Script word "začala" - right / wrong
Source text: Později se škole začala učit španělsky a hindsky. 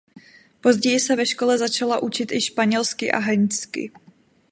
right